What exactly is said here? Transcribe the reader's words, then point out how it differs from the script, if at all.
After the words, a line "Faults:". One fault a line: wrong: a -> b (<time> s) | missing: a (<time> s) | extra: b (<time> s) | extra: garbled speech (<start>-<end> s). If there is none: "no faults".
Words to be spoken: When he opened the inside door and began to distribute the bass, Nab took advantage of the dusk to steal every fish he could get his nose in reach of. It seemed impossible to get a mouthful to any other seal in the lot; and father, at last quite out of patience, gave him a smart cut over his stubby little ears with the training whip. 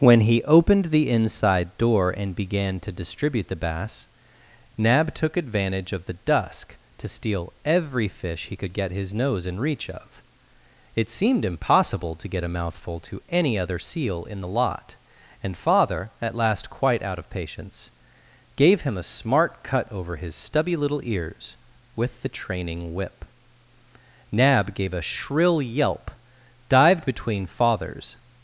When he opened the inside door and began to distribute the bass, Nab took advantage of the dusk to steal every fish he could get his nose in reach of. It seemed impossible to get a mouthful to any other seal in the lot; and father, at last quite out of patience, gave him a smart cut over his stubby little ears with the training whip. Nab gave a shrill yelp, dived between father's
Faults:
extra: Nab gave a shrill yelp dived between father's (24.3 s)